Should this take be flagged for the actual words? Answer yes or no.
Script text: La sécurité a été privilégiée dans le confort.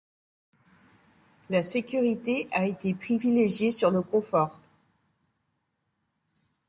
yes